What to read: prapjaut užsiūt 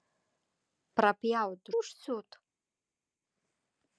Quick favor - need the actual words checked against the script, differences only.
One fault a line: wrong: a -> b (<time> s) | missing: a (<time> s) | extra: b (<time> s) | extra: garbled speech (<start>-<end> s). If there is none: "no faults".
no faults